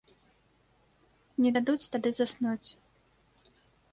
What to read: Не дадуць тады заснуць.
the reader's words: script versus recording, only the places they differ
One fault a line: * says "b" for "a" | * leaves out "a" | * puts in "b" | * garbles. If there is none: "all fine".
all fine